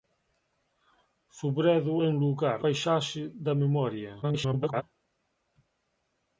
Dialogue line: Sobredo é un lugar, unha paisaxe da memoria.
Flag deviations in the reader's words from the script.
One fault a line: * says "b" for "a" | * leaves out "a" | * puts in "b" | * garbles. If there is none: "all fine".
* leaves out "unha"
* garbles